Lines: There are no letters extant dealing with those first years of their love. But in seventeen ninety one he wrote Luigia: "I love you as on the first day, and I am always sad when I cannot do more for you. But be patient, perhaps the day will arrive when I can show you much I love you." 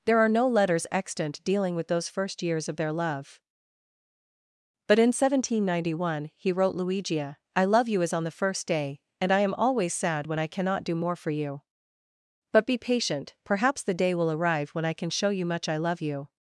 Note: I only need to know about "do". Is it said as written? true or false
true